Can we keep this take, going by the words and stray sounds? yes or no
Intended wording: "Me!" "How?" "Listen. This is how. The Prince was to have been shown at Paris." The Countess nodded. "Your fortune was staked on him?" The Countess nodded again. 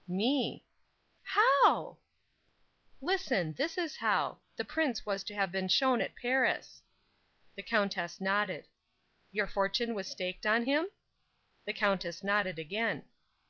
yes